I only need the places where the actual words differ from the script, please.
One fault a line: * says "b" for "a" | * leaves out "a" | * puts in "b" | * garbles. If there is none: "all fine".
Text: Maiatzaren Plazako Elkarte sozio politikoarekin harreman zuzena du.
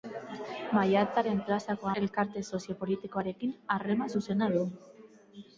all fine